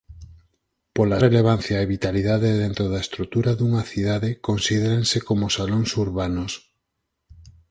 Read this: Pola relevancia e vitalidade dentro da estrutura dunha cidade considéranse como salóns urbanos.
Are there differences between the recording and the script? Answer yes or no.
no